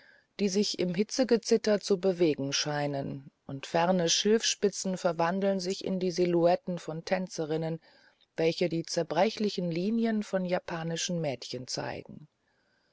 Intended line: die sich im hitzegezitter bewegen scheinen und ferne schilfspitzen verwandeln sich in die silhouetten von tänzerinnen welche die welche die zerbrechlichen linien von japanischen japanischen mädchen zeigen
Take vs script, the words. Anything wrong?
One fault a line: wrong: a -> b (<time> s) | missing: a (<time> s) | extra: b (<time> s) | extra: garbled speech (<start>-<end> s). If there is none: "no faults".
extra: zu (1.8 s)
missing: welche die (8.8 s)
missing: japanischen (11.2 s)